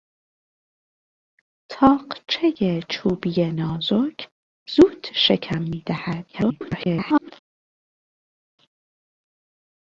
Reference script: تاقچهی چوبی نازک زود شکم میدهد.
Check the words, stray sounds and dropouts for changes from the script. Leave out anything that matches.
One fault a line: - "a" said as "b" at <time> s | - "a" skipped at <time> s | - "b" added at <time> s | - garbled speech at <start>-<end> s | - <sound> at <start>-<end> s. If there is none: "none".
- garbled speech at 6.3-7.3 s